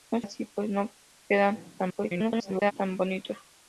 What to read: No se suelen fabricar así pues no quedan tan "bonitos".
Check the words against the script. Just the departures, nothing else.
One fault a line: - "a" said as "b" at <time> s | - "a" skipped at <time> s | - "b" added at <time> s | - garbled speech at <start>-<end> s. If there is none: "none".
- "se suelen fabricar" skipped at 0.2 s
- garbled speech at 1.8-2.7 s